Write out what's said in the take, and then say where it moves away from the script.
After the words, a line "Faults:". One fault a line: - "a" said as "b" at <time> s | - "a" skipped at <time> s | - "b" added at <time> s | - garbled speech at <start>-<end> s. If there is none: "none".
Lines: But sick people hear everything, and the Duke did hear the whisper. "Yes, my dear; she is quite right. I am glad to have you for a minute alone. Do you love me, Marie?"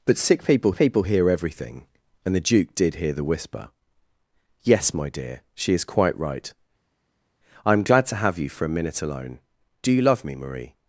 But sick people people hear everything, and the Duke did hear the whisper. "Yes, my dear; she is quite right. I am glad to have you for a minute alone. Do you love me, Marie?"
Faults:
- "people" added at 0.7 s